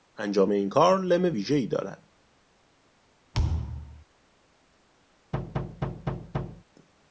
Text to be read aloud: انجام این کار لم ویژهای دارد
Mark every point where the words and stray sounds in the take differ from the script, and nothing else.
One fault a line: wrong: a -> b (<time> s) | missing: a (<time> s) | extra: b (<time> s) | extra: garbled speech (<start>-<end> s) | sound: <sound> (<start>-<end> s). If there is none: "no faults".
sound: thud (3.3-4.0 s)
sound: thud (5.3-6.6 s)